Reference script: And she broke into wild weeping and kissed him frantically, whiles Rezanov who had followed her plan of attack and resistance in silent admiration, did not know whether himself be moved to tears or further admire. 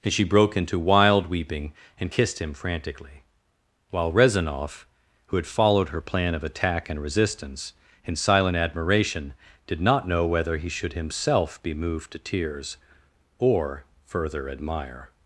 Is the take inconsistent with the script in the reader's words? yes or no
yes